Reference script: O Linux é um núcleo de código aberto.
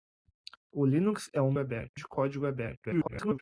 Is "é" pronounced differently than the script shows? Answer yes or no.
no